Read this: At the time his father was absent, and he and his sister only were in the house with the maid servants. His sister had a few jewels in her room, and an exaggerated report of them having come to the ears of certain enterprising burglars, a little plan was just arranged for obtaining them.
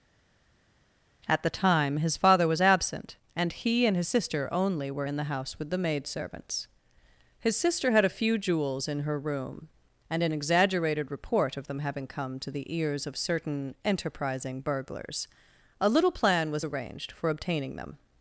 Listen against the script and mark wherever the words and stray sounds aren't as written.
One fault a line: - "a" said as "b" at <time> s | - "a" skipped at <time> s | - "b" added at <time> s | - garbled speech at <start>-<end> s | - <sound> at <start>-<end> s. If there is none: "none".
- "just" skipped at 16.6 s